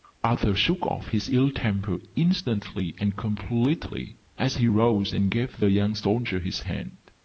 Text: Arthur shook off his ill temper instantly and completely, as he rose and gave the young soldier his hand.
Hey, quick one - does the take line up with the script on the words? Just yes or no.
yes